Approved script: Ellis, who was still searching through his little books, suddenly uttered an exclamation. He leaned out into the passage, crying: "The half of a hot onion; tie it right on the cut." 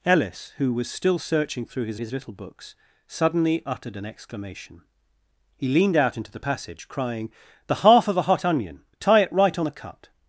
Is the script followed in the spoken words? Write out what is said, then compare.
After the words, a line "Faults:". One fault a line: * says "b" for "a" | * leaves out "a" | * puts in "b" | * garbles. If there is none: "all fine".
Ellis, who was still searching through his his little books, suddenly uttered an exclamation. He leaned out into the passage, crying: "The half of a hot onion; tie it right on the cut."
Faults:
* puts in "his"